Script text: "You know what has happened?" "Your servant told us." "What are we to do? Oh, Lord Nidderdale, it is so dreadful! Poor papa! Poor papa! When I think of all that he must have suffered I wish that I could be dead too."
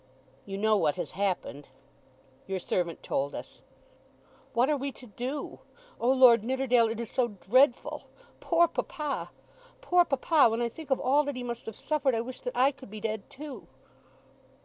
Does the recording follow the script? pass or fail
pass